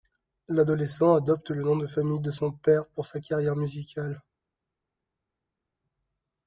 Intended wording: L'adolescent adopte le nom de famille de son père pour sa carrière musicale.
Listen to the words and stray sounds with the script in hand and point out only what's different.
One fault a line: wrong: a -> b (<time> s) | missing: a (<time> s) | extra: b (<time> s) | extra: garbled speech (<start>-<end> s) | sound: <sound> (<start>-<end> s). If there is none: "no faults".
no faults